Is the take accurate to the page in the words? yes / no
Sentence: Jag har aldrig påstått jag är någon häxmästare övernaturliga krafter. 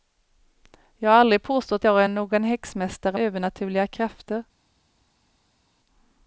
yes